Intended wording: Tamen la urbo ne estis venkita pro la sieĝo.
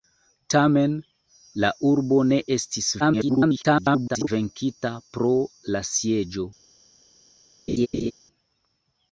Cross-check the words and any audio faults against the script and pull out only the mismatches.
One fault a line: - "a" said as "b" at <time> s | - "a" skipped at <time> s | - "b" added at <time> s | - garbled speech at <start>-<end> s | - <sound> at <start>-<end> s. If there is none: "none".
- garbled speech at 3.0-4.3 s
- laugh at 7.7-8.1 s